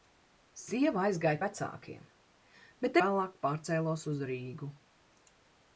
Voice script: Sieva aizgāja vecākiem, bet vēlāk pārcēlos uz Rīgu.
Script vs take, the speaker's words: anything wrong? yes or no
no